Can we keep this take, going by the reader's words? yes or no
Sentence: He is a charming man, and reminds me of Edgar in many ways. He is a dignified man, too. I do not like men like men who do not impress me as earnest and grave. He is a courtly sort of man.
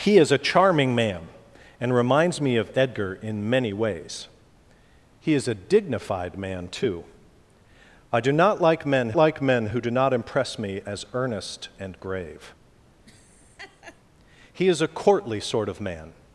yes